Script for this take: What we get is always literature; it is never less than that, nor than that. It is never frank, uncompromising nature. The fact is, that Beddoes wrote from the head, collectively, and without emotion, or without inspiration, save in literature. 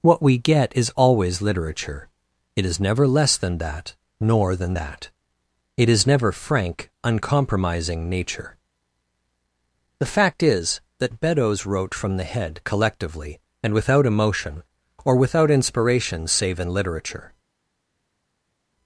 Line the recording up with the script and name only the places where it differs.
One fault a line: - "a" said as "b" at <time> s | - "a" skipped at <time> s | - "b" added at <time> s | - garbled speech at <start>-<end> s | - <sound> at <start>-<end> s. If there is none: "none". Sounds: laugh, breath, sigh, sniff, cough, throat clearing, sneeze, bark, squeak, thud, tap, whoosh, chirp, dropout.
none